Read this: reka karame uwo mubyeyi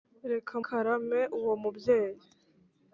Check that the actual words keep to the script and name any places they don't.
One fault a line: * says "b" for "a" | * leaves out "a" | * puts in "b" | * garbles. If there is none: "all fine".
all fine